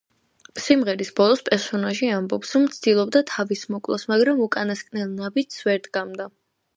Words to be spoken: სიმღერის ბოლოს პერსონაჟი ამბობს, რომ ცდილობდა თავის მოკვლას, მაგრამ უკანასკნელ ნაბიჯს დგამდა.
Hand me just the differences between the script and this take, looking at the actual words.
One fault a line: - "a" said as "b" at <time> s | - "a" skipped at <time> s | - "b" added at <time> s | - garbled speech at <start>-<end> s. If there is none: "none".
- "ვერ" added at 5.7 s